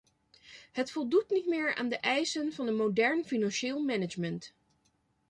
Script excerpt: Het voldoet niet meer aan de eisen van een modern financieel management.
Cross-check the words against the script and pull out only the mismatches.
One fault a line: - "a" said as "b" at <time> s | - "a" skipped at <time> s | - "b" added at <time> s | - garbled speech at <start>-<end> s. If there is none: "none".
none